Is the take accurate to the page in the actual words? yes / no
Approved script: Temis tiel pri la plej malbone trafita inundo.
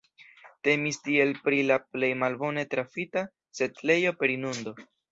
no